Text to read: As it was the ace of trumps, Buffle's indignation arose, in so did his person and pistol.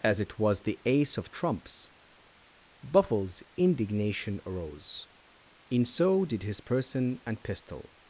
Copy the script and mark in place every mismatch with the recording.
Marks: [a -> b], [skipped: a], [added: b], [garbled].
As it was the ace of trumps, Buffle's indignation arose, in so did his person and pistol.